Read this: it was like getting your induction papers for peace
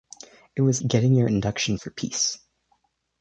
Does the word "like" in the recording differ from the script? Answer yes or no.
yes